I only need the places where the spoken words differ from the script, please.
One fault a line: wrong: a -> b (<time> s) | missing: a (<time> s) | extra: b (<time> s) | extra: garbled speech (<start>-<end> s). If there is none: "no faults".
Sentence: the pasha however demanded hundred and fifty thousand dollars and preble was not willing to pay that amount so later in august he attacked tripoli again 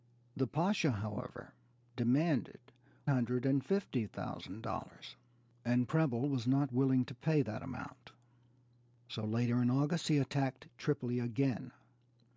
no faults